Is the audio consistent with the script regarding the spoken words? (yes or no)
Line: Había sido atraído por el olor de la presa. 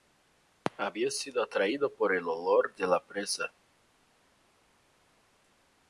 yes